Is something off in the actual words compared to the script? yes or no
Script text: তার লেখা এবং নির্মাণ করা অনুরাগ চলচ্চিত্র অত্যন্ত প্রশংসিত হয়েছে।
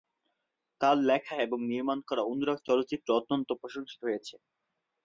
no